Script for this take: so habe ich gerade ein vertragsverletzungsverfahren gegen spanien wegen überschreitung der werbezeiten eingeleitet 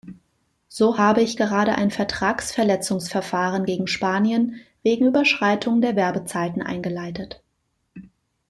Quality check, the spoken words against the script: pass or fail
pass